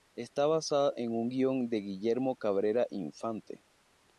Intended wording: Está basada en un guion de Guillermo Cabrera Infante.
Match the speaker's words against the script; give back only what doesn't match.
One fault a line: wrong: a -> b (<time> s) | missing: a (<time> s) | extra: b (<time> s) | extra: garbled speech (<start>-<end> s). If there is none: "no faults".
no faults